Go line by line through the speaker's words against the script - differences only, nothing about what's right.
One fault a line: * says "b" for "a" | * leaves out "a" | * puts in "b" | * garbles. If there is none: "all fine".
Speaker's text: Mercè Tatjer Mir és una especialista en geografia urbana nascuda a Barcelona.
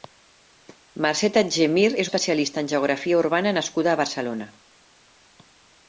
* leaves out "una"